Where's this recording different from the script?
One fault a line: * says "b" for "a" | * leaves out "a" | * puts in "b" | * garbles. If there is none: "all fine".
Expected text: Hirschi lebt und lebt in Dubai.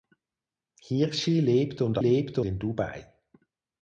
all fine